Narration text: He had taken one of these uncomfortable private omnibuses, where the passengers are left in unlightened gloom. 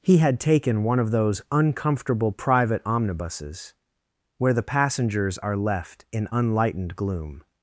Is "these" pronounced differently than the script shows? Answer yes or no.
yes